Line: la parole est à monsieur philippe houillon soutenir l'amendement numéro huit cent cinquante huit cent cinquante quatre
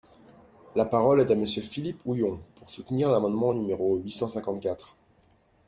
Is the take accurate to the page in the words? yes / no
no